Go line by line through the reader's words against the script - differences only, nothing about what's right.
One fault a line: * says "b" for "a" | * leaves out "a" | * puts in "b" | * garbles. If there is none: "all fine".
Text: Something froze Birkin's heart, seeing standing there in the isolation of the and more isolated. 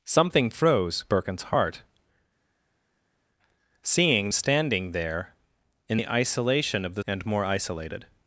all fine